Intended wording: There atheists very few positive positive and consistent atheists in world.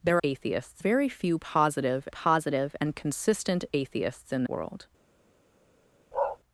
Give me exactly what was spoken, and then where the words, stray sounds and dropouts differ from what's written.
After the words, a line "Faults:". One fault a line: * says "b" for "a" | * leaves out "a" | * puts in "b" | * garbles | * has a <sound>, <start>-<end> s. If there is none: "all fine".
There atheists very few positive positive and consistent atheists in world.
Faults:
* has a bark, 6.1-6.4 s